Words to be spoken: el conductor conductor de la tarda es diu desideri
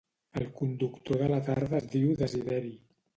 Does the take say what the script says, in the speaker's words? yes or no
no